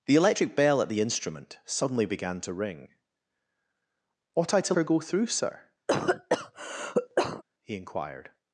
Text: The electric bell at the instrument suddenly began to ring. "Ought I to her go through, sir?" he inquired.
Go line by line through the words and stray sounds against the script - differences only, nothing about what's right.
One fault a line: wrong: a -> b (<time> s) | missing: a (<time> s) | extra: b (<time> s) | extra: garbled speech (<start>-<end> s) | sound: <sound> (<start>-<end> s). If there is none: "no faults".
sound: cough (5.9-7.4 s)